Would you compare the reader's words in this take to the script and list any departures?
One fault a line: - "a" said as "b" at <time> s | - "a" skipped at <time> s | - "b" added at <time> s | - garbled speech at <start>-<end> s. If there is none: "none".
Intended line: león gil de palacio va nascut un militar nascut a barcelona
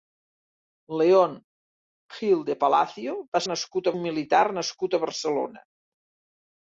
none